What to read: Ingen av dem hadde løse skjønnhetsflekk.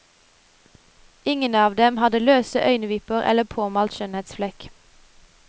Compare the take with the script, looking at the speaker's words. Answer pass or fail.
fail